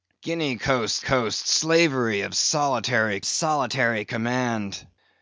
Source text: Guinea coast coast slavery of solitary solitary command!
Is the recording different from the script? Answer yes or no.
no